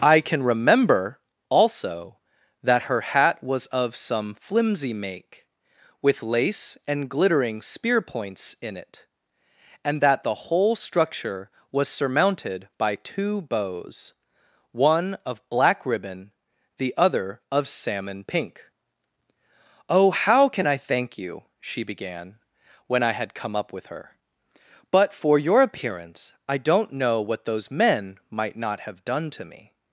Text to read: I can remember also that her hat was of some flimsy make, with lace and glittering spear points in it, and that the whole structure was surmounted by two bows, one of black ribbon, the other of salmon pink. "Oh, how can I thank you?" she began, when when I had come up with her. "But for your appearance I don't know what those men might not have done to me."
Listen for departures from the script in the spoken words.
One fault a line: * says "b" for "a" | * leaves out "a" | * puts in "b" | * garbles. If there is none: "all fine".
* leaves out "when"